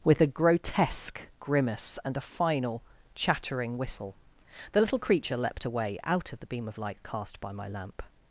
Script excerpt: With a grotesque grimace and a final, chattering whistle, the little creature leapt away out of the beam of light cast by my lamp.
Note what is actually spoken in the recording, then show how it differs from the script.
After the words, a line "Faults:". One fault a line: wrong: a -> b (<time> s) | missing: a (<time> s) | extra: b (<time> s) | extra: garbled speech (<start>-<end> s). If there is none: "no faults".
With a grotesque grimace and a final, chattering whistle, the little creature leapt away out of the beam of light cast by my lamp.
Faults:
no faults